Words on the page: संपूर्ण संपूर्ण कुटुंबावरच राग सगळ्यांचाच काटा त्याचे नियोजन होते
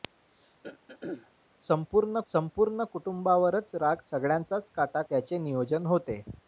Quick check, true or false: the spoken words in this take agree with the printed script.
true